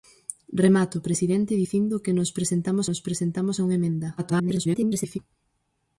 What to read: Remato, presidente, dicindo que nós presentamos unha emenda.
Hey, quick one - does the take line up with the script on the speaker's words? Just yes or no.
no